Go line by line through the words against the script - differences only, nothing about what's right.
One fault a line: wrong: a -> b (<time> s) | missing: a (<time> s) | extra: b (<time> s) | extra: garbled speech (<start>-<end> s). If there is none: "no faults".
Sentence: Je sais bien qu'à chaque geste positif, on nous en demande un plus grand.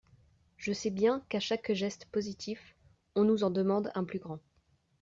no faults